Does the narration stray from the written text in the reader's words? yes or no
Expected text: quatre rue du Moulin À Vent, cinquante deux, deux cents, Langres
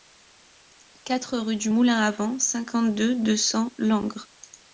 no